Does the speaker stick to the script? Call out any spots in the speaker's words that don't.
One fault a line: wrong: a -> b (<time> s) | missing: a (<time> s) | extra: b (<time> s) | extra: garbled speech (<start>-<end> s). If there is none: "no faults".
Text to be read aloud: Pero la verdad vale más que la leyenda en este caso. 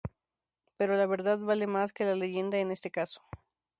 no faults